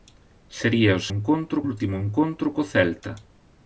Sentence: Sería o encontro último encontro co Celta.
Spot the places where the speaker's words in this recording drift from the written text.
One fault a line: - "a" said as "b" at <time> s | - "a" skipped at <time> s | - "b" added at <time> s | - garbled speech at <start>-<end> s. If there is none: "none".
none